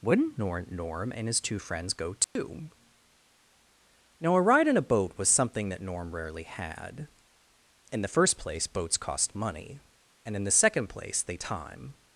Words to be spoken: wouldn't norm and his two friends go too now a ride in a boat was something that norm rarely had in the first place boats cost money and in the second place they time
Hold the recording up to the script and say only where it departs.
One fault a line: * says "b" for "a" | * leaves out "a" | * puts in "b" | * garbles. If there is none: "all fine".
all fine